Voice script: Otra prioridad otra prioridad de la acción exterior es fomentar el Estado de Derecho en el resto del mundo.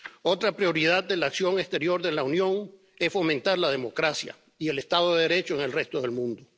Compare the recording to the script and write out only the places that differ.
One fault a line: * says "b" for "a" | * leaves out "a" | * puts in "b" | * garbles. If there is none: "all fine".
* leaves out "otra prioridad"
* puts in "de la Unión"
* puts in "la democracia y"